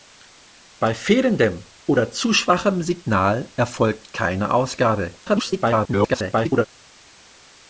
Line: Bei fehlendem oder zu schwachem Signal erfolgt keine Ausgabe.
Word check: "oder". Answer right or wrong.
right